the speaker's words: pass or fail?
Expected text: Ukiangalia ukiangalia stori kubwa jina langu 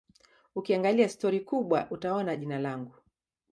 fail